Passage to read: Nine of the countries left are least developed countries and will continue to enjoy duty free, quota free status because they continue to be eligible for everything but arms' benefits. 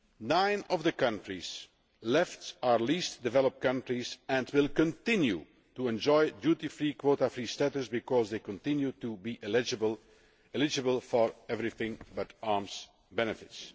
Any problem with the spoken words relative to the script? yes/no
no